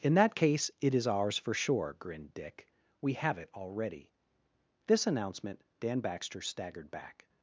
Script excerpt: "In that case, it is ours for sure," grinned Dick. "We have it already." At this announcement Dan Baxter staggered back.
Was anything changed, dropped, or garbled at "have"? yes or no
no